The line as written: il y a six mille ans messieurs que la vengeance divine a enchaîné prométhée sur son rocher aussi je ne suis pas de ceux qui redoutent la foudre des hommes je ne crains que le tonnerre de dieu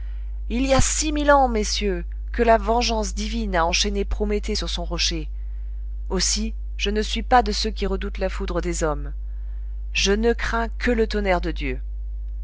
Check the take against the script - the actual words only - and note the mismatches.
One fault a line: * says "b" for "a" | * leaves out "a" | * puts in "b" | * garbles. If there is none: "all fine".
all fine